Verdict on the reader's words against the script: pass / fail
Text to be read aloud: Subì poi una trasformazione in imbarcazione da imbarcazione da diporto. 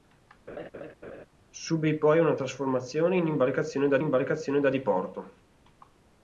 pass